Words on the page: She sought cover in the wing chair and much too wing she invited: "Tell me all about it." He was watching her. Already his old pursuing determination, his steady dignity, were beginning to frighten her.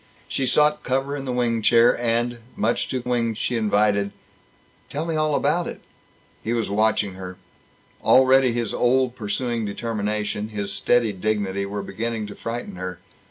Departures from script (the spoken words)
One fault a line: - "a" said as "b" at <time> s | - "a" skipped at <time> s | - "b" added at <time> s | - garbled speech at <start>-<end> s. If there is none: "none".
none